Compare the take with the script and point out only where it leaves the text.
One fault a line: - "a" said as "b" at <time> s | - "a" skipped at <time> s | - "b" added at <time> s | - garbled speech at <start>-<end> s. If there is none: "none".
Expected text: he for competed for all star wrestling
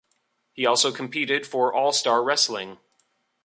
- "for" said as "also" at 0.7 s